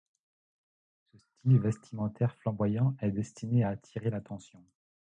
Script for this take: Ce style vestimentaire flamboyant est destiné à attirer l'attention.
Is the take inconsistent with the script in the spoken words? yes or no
no